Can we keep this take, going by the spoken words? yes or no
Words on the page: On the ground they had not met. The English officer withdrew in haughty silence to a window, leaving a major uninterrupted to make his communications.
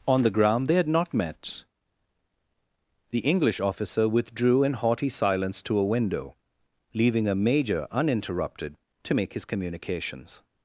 yes